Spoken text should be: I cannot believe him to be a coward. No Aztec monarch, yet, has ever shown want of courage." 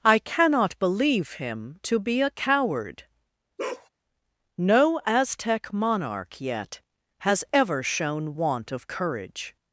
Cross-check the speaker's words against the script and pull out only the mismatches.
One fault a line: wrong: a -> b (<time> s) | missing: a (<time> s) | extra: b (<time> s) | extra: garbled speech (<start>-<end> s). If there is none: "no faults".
no faults